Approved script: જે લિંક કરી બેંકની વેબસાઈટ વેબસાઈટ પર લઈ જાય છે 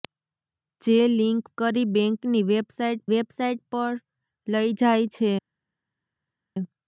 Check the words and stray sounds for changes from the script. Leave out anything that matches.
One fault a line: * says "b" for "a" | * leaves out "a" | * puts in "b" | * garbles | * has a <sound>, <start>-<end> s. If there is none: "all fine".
all fine